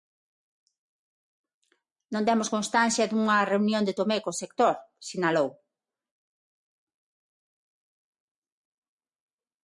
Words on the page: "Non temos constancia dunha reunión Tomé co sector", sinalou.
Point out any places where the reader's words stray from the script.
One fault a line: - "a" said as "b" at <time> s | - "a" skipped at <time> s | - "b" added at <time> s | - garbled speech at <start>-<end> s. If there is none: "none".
- "de" added at 3.8 s